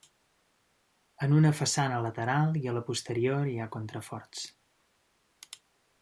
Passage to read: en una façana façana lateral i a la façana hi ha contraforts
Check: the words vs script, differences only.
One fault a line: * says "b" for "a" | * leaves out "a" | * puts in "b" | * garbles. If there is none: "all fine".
* leaves out "façana"
* says "posterior" for "façana"